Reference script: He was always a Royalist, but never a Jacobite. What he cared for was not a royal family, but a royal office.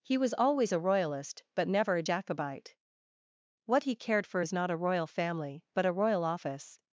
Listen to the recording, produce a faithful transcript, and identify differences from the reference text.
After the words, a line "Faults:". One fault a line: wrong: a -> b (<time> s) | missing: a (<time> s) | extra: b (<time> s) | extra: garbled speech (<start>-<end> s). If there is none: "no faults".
He was always a Royalist, but never a Jacobite. What he cared for is not a royal family, but a royal office.
Faults:
wrong: was -> is (4.4 s)